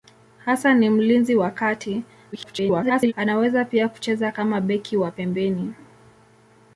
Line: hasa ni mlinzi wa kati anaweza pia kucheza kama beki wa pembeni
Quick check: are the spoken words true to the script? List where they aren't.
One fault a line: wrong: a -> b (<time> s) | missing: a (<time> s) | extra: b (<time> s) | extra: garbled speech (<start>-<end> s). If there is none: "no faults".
extra: garbled speech (2.3-3.1 s)